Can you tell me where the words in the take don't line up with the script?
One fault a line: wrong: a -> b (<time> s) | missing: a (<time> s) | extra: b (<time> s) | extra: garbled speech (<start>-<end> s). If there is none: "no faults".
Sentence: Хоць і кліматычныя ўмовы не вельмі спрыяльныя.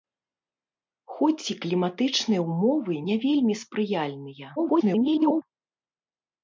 extra: garbled speech (4.6-5.4 s)